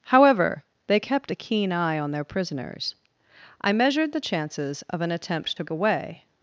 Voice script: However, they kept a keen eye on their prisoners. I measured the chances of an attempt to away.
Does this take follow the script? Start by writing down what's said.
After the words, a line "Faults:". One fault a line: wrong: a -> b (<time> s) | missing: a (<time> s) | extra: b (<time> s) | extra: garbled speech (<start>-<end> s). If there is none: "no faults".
However, they kept a keen eye on their prisoners. I measured the chances of an attempt to away.
Faults:
no faults